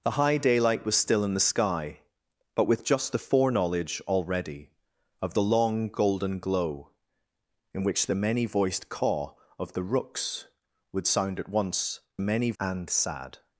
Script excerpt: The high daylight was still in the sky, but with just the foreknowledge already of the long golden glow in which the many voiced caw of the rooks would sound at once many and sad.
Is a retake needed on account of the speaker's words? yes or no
no